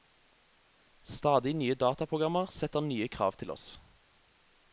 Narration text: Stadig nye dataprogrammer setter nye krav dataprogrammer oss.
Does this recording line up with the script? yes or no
no